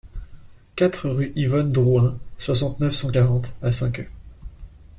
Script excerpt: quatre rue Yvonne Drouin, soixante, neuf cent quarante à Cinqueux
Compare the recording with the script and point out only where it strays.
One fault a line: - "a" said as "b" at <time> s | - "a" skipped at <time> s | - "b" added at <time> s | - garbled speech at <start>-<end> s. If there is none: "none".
none